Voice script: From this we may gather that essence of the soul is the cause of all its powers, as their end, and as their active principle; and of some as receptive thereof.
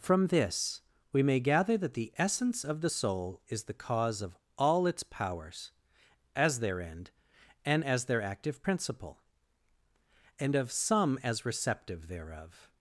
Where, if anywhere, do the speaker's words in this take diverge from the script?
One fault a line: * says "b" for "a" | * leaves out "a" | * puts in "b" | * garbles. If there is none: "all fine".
* puts in "the"